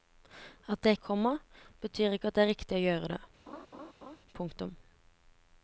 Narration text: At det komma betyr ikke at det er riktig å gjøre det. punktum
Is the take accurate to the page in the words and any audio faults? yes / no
no